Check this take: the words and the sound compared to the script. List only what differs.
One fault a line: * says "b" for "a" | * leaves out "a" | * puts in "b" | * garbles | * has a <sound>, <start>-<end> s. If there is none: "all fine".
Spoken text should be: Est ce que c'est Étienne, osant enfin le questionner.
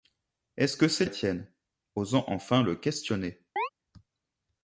* has a chirp, 3.6-3.7 s